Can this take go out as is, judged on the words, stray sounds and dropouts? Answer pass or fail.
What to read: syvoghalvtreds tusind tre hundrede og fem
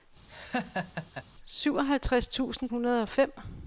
fail